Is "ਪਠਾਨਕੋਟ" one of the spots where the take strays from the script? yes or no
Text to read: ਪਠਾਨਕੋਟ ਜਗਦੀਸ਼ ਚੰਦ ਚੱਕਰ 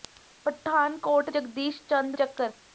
no